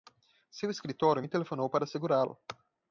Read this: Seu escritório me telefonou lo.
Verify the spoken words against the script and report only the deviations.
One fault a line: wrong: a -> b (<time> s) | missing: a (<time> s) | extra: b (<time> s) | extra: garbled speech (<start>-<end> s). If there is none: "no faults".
extra: para segurá (1.7 s)